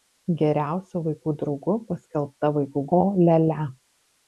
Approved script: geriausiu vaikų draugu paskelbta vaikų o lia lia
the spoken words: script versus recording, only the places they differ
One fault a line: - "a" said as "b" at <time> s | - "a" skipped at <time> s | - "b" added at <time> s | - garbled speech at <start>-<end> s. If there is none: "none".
none